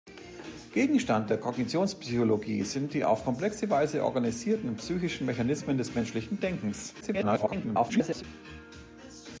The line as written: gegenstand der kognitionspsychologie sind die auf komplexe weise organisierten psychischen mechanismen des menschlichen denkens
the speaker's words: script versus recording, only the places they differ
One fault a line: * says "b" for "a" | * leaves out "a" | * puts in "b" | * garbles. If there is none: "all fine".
* garbles